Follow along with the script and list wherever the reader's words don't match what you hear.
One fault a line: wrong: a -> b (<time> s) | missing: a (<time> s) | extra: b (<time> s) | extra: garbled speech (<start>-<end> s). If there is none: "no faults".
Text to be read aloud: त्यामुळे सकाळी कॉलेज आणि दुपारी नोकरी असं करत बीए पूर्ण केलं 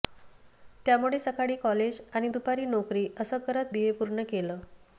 no faults